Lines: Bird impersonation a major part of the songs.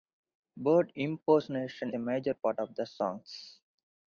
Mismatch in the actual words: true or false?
false